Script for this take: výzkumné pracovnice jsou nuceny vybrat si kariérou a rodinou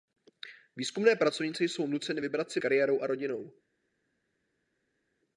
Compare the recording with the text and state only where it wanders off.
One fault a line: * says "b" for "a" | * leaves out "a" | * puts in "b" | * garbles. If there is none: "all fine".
all fine